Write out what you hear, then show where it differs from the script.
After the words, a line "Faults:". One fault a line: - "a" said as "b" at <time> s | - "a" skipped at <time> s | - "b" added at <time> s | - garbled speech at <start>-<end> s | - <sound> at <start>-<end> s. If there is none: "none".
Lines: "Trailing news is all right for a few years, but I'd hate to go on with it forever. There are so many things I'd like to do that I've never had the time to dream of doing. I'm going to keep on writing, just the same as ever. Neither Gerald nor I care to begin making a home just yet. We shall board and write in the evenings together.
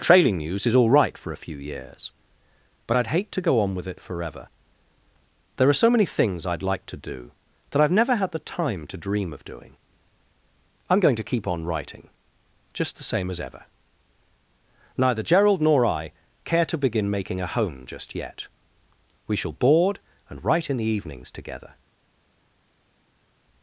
"Trailing news is all right for a few years, but I'd hate to go on with it forever. There are so many things I'd like to do that I've never had the time to dream of doing. I'm going to keep on writing, just the same as ever. Neither Gerald nor I care to begin making a home just yet. We shall board and write in the evenings together.
Faults:
none